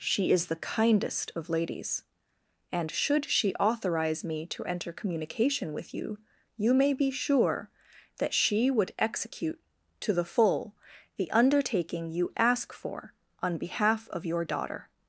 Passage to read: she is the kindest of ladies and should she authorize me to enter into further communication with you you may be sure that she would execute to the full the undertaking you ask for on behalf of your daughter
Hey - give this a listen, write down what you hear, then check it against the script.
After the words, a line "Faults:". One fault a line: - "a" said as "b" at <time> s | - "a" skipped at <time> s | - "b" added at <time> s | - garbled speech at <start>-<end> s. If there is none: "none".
she is the kindest of ladies and should she authorize me to enter communication with you you may be sure that she would execute to the full the undertaking you ask for on behalf of your daughter
Faults:
- "into further" skipped at 4.9 s